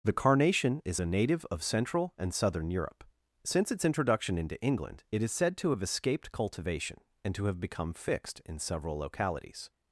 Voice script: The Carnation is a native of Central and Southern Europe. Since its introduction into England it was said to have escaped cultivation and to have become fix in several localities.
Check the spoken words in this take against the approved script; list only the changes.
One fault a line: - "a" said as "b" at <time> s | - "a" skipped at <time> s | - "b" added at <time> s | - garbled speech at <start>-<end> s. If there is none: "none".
- "was" said as "is" at 5.2 s
- "fix" said as "fixed" at 7.9 s